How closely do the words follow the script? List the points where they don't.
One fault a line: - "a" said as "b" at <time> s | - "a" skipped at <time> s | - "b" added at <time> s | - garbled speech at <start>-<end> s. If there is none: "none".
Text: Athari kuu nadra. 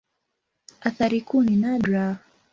- "ni" added at 1.4 s